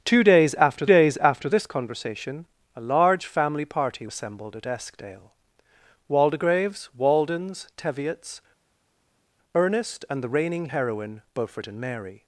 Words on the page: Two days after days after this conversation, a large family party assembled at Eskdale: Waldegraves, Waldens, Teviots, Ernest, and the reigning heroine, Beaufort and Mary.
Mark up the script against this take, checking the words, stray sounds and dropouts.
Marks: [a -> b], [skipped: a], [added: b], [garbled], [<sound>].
Two days after days after this conversation, a large family party assembled at Eskdale: Waldegraves, Waldens, Teviots, Ernest, and the reigning heroine, Beaufort and Mary.